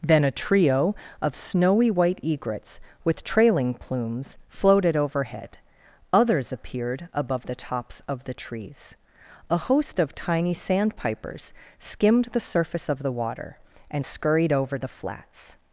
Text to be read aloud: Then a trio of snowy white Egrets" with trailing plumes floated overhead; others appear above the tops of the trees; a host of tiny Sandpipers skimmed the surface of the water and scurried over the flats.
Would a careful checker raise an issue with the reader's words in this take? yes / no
yes